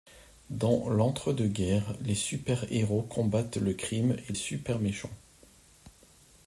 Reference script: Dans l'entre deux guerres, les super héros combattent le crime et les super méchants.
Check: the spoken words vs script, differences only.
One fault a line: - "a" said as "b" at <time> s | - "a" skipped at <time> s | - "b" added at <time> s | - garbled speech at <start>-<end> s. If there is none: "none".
- "les" skipped at 4.3 s